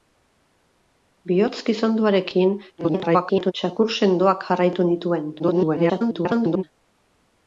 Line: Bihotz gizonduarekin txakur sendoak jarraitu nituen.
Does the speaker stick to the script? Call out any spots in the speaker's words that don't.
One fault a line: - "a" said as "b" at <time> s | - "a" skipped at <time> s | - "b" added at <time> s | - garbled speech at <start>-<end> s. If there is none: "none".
- garbled speech at 2.8-3.5 s
- garbled speech at 5.4-6.6 s